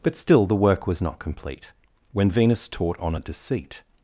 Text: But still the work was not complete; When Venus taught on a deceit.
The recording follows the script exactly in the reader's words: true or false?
true